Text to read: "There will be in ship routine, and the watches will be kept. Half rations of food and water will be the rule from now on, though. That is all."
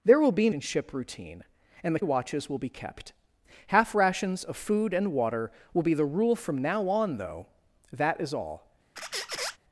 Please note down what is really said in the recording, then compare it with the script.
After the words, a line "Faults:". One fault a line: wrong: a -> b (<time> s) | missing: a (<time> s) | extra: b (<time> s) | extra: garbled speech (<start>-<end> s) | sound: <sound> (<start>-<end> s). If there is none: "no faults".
"There will be in ship routine, and the watches will be kept. Half rations of food and water will be the rule from now on, though. That is all."
Faults:
sound: squeak (9.0-9.6 s)